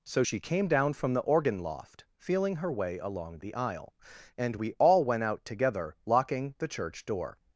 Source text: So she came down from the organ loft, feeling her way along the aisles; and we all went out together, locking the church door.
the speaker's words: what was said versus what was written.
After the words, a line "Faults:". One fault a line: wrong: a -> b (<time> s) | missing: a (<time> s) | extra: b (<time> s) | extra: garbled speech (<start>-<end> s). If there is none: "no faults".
So she came down from the organ loft, feeling her way along the aisle; and we all went out together, locking the church door.
Faults:
wrong: aisles -> aisle (3.5 s)